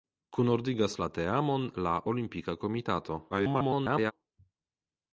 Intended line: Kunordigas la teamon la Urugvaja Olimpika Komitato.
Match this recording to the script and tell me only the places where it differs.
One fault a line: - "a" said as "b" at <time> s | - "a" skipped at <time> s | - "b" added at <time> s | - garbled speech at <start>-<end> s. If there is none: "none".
- "Urugvaja" skipped at 1.9 s
- garbled speech at 3.3-4.1 s